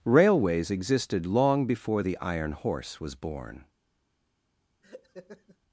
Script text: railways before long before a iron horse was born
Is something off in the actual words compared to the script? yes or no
yes